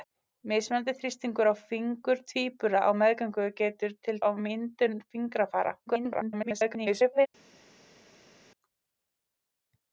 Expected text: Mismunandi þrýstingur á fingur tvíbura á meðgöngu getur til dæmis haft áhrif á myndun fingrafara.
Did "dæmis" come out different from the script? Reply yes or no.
yes